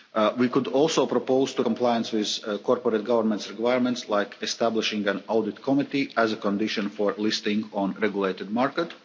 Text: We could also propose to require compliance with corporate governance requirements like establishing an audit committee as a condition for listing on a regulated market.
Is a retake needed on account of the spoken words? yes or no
yes